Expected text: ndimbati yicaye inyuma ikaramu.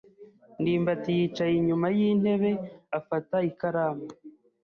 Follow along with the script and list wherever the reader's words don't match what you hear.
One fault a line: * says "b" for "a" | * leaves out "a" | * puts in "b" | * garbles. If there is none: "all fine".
* puts in "yintebe afata"